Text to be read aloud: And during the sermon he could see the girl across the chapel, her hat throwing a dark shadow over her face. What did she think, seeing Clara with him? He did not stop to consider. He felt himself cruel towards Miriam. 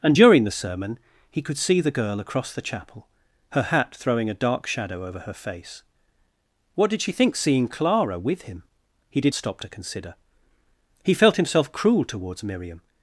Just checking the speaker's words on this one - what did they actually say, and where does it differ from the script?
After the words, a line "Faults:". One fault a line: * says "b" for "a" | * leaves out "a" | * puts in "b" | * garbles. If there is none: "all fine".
And during the sermon he could see the girl across the chapel, her hat throwing a dark shadow over her face. What did she think, seeing Clara with him? He did stop to consider. He felt himself cruel towards Miriam.
Faults:
* leaves out "not"